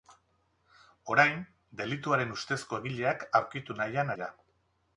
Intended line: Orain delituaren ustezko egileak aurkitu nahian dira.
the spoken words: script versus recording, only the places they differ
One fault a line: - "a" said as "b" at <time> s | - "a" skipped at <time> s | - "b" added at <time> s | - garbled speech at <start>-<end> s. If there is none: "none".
none